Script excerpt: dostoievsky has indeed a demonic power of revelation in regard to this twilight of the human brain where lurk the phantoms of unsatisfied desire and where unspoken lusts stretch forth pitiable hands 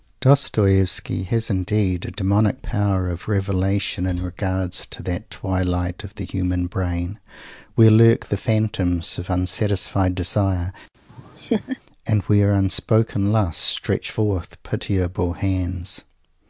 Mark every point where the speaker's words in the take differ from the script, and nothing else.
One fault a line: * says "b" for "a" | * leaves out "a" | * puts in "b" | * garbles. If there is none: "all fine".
* says "that" for "this"